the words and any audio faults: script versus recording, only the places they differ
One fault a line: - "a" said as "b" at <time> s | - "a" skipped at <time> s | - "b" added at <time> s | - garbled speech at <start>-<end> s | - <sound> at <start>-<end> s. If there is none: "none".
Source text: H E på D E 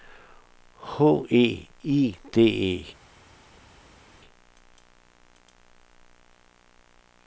- "på" said as "I" at 1.8 s